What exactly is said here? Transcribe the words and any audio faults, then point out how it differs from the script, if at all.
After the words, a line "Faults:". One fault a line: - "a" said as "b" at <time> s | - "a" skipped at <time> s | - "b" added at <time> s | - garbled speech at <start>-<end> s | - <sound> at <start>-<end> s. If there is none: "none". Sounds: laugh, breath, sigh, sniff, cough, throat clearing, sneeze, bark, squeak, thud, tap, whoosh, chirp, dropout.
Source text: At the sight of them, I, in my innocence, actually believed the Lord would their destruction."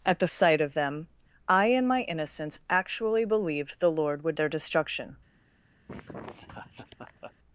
At the sight of them, I, in my innocence, actually believed the Lord would their destruction."
Faults:
- laugh at 5.9-7.3 s